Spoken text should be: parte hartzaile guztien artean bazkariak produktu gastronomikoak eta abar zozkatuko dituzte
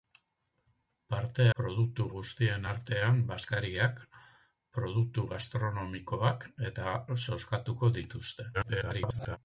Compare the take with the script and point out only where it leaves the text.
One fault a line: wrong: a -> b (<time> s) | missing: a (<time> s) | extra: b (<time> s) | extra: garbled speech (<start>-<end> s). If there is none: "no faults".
wrong: hartzaile -> produktu (1.6 s)
missing: abar (6.9 s)
extra: garbled speech (8.5-9.4 s)